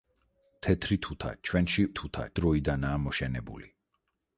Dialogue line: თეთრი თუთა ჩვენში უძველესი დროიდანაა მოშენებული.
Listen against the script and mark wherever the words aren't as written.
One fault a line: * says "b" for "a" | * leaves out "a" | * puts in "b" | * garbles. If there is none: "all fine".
* says "თუთა" for "უძველესი"